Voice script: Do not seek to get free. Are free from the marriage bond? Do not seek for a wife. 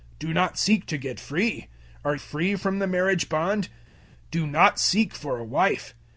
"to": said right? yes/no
yes